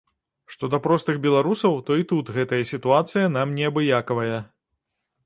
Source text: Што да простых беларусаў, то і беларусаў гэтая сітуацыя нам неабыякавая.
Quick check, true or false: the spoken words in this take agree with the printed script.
false